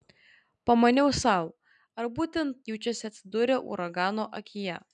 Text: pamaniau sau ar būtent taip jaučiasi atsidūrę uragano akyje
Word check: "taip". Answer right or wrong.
wrong